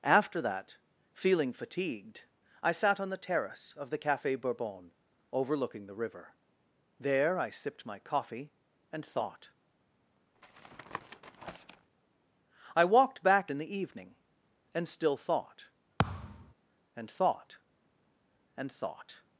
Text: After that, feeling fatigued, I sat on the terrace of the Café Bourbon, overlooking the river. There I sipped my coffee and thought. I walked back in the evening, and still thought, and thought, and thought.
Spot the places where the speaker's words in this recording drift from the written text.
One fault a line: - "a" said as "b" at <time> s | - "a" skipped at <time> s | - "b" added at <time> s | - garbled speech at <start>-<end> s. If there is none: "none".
none